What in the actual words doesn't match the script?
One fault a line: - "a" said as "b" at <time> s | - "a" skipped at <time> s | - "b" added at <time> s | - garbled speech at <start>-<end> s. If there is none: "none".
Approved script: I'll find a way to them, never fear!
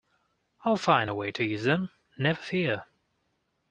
- "use" added at 1.4 s